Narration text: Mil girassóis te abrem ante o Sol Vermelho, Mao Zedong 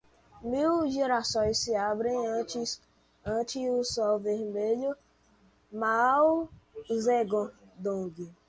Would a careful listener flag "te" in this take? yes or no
yes